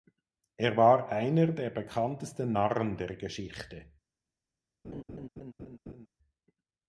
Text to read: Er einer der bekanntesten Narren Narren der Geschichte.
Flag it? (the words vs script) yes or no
yes